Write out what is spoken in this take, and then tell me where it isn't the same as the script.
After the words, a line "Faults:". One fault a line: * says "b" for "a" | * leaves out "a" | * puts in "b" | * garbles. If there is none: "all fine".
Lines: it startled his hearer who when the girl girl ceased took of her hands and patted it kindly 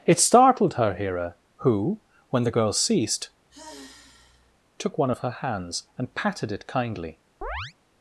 it startled her hearer who when the girl ceased took one of her hands and patted it kindly
Faults:
* says "her" for "his"
* leaves out "girl"
* puts in "one"